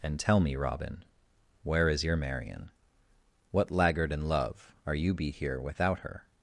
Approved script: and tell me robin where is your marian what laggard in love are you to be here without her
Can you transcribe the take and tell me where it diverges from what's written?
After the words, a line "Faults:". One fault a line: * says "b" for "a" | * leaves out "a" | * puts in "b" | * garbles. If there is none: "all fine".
and tell me robin where is your marian what laggard in love are you be here without her
Faults:
* leaves out "to"